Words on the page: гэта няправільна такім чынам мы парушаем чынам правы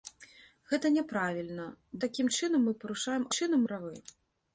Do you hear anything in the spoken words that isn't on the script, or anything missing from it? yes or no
no